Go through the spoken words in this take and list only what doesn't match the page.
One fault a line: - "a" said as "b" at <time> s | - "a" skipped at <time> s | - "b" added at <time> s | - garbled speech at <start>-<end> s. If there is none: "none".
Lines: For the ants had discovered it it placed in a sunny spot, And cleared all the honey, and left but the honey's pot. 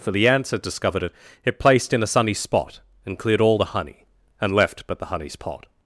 none